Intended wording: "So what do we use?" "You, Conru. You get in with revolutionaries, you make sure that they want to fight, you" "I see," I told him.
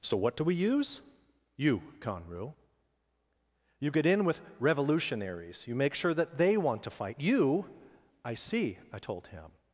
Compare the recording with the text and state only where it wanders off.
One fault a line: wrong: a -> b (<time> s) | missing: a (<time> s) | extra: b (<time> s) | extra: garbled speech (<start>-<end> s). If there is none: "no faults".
no faults